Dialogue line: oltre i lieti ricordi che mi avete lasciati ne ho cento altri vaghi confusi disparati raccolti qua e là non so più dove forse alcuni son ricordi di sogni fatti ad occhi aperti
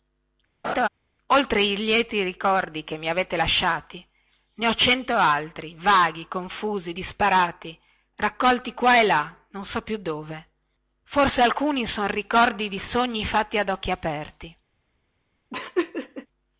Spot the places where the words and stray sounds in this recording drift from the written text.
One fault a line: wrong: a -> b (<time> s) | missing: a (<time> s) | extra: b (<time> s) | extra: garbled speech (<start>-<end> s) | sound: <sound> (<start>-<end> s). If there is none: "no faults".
sound: laugh (0.6-0.9 s)
sound: laugh (15.5-16.3 s)